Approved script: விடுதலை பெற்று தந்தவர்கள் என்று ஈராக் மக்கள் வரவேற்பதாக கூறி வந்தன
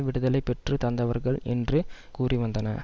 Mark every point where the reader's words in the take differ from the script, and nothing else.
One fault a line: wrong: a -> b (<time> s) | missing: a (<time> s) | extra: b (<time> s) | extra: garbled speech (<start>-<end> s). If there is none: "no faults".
missing: ஈராக் மக்கள் வரவேற்பதாக (1.8 s)